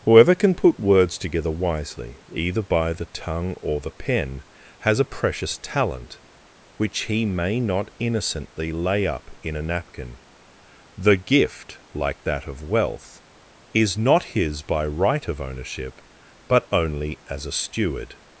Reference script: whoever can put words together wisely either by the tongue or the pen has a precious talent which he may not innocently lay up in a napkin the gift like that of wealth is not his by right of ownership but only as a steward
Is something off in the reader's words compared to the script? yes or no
no